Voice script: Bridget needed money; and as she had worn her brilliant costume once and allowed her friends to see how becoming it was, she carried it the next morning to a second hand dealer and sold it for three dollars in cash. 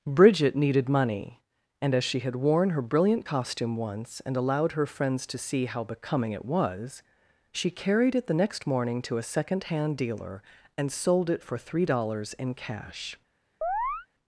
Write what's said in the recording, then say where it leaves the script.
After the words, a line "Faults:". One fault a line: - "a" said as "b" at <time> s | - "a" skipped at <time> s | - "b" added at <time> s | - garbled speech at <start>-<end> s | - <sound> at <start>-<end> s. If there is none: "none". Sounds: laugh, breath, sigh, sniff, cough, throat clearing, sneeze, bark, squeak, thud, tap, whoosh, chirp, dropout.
Bridget needed money; and as she had worn her brilliant costume once and allowed her friends to see how becoming it was, she carried it the next morning to a second hand dealer and sold it for three dollars in cash.
Faults:
- chirp at 13.6-14.1 s